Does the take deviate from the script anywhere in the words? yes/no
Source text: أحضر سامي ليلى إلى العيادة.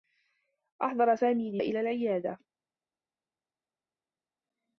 yes